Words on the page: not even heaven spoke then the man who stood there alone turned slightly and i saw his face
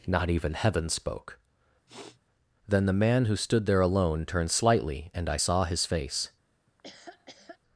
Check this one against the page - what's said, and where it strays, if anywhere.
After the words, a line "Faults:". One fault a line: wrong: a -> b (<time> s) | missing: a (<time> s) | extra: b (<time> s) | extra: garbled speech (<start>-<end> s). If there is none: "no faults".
not even heaven spoke then the man who stood there alone turned slightly and i saw his face
Faults:
no faults